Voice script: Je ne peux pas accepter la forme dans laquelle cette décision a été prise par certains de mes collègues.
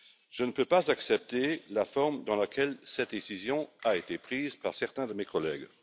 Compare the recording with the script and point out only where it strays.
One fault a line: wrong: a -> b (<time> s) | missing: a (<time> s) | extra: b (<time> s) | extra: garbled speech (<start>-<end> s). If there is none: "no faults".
no faults